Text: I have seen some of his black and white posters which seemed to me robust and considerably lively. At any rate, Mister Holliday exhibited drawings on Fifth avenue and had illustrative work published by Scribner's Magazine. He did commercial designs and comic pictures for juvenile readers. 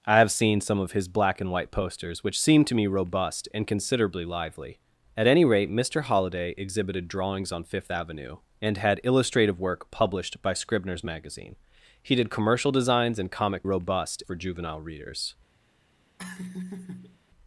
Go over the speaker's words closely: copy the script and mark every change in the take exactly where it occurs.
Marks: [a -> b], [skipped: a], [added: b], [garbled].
I have seen some of his black and white posters which seemed to me robust and considerably lively. At any rate, Mister Holliday exhibited drawings on Fifth avenue and had illustrative work published by Scribner's Magazine. He did commercial designs and comic [pictures -> robust] for juvenile readers.